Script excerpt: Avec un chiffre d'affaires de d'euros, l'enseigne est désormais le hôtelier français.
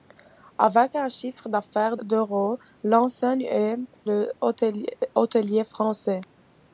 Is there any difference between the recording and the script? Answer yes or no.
yes